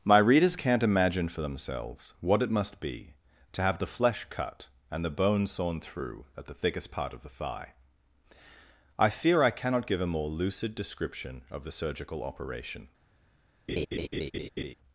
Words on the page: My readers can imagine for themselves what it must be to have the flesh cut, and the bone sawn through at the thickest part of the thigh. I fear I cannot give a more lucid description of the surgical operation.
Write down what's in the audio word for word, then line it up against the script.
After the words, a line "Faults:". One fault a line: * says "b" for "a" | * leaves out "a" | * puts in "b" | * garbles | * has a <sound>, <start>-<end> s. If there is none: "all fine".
My readers can't imagine for themselves what it must be to have the flesh cut, and the bone sawn through at the thickest part of the thigh. I fear I cannot give a more lucid description of the surgical operation.
Faults:
* says "can't" for "can"
* has a laugh, 13.7-14.7 s